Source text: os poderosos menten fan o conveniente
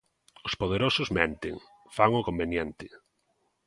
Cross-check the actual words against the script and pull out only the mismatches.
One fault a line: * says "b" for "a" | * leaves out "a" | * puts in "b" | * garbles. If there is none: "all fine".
all fine